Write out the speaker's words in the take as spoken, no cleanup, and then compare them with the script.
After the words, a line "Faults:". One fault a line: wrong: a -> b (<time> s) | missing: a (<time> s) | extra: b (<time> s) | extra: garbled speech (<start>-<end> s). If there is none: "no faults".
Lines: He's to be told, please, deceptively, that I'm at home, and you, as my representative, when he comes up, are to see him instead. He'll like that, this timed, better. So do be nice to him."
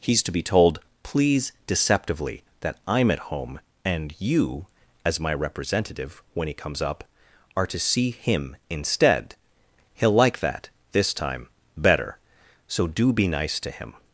He's to be told, please, deceptively, that I'm at home, and you, as my representative, when he comes up, are to see him instead. He'll like that, this time, better. So do be nice to him."
Faults:
wrong: timed -> time (11.1 s)